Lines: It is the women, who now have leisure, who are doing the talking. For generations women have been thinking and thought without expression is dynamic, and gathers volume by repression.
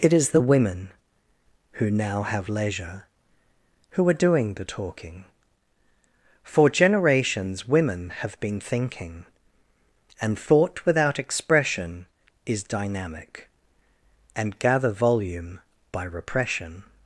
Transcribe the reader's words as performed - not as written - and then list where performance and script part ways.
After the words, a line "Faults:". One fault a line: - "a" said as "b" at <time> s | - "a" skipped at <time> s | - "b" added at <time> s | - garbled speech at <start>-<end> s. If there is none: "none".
It is the women, who now have leisure, who are doing the talking. For generations women have been thinking and thought without expression is dynamic, and gather volume by repression.
Faults:
- "gathers" said as "gather" at 14.6 s